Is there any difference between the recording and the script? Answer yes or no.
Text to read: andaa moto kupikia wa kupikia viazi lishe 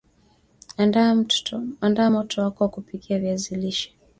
yes